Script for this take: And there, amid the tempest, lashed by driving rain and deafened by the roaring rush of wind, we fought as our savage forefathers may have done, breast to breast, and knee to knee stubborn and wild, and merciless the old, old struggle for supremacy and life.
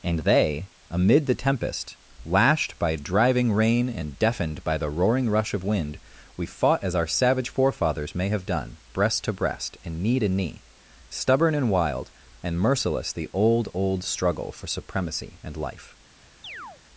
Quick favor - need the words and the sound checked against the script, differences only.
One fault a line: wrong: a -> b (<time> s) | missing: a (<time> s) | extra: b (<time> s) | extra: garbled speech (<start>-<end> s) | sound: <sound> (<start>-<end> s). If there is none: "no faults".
wrong: there -> they (0.2 s)
sound: chirp (16.4-16.8 s)